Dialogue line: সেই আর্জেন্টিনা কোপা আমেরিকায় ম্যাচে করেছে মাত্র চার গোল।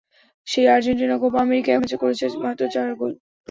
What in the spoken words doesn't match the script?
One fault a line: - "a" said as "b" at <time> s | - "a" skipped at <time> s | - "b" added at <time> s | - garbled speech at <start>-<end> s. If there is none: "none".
none